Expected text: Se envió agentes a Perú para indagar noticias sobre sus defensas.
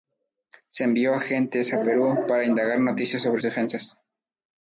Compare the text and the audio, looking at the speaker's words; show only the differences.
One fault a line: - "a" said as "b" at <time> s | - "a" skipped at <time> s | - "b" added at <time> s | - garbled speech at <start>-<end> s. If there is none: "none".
- "sus" skipped at 3.4 s